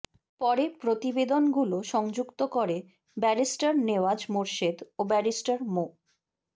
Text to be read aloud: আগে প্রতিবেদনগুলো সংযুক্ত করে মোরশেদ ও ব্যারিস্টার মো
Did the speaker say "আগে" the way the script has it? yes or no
no